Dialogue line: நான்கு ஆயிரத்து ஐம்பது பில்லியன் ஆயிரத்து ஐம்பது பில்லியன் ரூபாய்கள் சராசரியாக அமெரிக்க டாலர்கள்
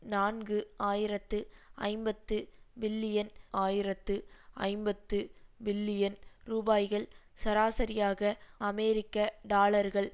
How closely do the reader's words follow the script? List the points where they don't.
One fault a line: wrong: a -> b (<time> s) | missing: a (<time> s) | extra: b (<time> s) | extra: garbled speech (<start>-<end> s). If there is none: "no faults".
no faults